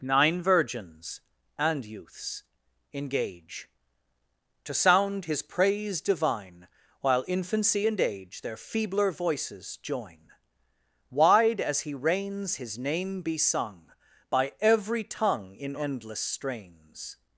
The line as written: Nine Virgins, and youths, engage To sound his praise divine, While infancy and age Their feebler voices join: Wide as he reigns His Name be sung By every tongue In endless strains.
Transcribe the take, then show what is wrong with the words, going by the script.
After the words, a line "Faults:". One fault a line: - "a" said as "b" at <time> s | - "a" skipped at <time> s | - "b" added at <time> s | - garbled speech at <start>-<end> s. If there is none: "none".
Nine Virgins, and youths, engage To sound his praise divine, While infancy and age Their feebler voices join: Wide as he reigns His Name be sung By every tongue In endless strains.
Faults:
none